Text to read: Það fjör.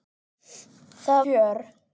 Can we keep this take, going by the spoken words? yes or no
yes